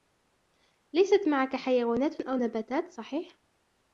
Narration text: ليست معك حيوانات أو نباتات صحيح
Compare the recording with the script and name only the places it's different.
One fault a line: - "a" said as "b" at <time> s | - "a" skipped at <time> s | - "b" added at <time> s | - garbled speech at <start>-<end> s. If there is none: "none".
none